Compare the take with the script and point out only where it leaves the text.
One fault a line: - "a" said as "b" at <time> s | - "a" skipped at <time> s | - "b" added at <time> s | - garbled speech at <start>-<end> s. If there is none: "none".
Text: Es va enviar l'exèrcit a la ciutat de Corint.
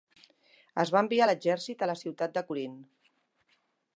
none